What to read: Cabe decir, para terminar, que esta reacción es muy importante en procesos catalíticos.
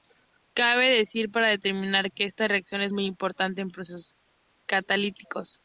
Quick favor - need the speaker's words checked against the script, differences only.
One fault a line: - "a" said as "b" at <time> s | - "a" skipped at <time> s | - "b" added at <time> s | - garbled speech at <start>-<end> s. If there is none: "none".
none